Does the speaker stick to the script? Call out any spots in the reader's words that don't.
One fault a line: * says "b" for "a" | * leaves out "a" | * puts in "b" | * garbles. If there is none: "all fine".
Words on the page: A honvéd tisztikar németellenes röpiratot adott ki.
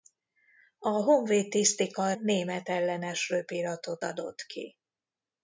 all fine